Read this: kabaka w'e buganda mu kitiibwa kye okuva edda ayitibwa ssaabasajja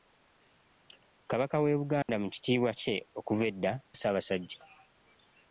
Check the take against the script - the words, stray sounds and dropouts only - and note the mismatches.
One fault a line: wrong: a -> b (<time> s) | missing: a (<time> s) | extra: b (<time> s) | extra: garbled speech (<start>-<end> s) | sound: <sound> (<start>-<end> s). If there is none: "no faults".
sound: dropout (2.0-2.1 s)
missing: ayitibwa (3.7 s)